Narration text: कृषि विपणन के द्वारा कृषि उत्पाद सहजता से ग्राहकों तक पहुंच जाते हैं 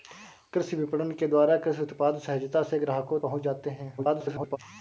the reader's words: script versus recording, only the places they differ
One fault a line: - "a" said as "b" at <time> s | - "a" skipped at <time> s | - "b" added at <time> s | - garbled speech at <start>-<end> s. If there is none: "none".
- "तक" skipped at 3.2 s
- garbled speech at 4.0-4.6 s